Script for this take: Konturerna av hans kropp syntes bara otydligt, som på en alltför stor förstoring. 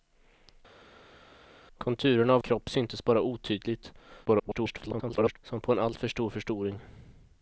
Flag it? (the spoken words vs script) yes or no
yes